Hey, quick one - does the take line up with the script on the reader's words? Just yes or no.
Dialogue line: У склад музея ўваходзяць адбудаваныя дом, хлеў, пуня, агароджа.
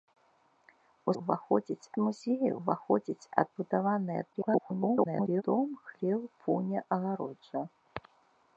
no